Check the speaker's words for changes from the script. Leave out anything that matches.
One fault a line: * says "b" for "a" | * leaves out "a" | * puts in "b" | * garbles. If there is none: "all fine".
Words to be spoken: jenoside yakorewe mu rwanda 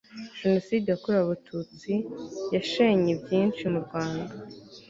* puts in "abatutsi yashenye byinshi"